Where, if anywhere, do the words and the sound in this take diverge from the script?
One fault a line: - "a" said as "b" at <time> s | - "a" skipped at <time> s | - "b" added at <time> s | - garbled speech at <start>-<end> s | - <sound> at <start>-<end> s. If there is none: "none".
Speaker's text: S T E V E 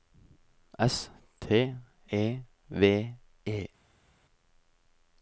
none